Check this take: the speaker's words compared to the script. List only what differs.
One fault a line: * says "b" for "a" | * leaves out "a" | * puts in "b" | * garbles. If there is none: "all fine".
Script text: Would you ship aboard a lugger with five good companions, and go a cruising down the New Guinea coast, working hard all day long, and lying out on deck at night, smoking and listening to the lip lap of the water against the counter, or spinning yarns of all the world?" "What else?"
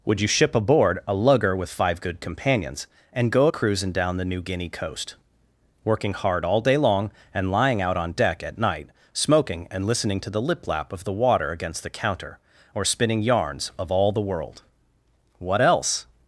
all fine